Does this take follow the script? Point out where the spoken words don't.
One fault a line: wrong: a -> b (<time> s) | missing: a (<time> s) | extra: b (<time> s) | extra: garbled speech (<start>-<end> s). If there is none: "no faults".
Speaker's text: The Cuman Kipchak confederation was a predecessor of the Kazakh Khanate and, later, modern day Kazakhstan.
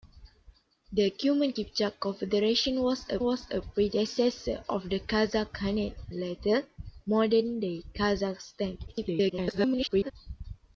extra: was a (3.2 s)
missing: and (5.9 s)
extra: garbled speech (8.9-10.1 s)